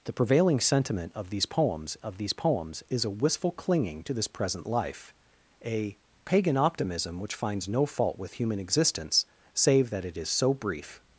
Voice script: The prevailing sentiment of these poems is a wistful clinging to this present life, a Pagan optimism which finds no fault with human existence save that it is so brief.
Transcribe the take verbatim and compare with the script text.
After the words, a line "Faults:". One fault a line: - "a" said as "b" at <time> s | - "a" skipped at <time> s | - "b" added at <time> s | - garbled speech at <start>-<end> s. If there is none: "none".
The prevailing sentiment of these poems of these poems is a wistful clinging to this present life, a Pagan optimism which finds no fault with human existence save that it is so brief.
Faults:
- "of these poems" added at 2.0 s